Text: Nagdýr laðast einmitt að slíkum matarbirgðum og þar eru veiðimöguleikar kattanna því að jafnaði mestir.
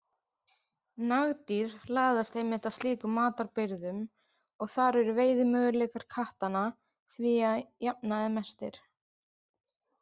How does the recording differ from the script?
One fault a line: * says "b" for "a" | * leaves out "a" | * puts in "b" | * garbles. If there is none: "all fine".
all fine